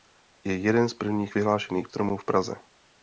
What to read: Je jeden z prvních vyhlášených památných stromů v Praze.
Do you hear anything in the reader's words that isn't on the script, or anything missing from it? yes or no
yes